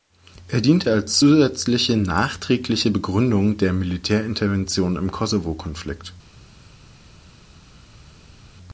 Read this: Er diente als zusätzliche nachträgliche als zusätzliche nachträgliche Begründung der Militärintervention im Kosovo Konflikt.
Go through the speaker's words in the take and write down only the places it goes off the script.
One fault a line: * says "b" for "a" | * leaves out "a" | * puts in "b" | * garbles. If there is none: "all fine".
* leaves out "als zusätzliche nachträgliche"